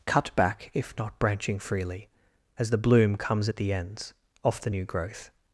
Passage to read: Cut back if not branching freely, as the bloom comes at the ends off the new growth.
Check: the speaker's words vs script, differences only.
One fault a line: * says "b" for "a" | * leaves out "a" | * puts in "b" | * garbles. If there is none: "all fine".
all fine